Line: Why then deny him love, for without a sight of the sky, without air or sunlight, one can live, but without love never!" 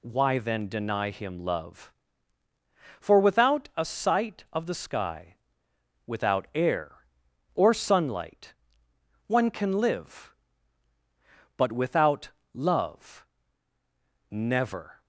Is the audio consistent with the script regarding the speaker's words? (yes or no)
yes